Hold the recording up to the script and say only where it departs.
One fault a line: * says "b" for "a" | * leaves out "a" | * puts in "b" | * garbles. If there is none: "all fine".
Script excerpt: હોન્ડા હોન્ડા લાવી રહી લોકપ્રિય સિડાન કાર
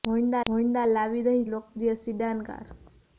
all fine